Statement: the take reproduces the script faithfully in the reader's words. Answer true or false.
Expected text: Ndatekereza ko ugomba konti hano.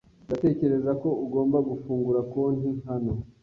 false